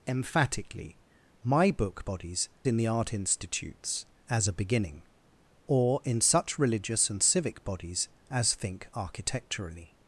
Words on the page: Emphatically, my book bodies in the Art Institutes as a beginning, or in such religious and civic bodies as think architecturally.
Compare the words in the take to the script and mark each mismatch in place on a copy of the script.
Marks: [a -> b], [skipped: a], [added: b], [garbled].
Emphatically, my book bodies in the Art Institutes as a beginning, or in such religious and civic bodies as think architecturally.